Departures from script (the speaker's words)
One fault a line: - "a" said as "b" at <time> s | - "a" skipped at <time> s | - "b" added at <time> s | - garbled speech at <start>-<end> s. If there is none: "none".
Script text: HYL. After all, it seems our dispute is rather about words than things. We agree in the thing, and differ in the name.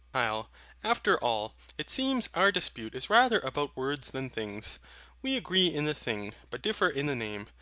- "and" said as "but" at 6.5 s